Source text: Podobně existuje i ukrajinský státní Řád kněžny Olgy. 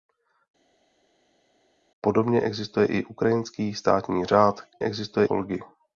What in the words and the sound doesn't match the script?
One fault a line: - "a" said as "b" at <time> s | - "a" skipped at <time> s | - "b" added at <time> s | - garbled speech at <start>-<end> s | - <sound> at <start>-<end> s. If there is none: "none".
- "kněžny" said as "existuje" at 4.8 s